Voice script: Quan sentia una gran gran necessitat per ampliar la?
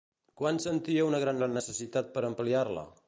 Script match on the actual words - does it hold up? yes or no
yes